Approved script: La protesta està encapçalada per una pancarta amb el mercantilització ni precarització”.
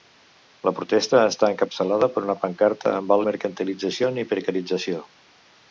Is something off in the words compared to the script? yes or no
no